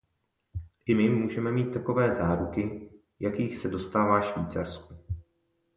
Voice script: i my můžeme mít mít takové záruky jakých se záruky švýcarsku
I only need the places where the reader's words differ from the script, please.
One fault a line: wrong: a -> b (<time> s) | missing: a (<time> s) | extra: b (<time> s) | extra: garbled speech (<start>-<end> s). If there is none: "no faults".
missing: mít (1.7 s)
wrong: záruky -> dostává (3.7 s)